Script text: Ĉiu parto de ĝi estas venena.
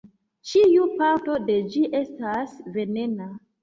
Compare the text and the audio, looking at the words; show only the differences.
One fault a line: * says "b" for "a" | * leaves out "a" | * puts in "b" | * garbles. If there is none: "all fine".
all fine